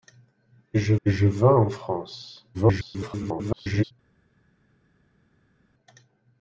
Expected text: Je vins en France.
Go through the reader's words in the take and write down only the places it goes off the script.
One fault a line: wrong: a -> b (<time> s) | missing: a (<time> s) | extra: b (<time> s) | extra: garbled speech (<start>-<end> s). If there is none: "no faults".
extra: je (1.0 s)
extra: garbled speech (2.5-3.9 s)